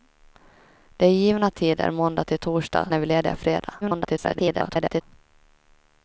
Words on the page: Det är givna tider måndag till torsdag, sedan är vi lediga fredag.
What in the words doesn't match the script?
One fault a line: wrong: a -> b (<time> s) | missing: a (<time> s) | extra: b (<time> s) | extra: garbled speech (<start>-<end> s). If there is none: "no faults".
missing: sedan (2.9 s)
extra: garbled speech (3.8-5.0 s)